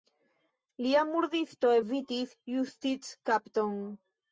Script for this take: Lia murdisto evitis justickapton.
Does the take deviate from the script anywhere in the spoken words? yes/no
no